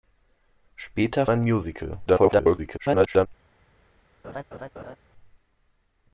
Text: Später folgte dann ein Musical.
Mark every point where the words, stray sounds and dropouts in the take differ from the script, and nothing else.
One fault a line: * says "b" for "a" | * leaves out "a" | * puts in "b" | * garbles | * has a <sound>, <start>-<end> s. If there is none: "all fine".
* leaves out "folgte dann"
* garbles
* has a laugh, 4.2-5.0 s